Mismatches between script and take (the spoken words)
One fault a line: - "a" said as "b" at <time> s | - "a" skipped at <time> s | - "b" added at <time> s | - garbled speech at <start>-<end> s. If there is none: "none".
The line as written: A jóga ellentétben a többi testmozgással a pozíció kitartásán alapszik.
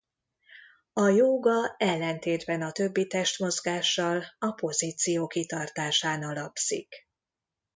none